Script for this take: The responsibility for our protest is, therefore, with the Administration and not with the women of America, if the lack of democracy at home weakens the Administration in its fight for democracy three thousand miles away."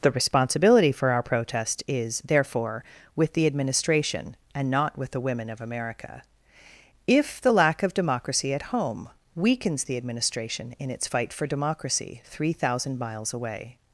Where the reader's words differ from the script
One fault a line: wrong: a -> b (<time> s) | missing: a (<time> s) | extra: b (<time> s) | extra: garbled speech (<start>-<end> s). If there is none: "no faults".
no faults